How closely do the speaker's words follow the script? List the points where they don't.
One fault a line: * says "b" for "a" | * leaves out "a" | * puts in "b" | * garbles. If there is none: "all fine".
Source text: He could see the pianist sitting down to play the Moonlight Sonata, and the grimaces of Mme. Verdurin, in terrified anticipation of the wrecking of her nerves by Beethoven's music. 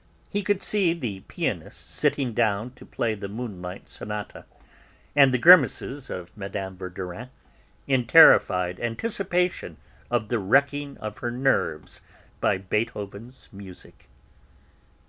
all fine